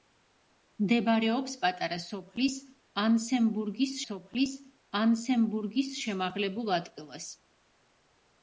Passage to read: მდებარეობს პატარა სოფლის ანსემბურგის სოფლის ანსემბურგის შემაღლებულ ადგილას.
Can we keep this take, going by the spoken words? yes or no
yes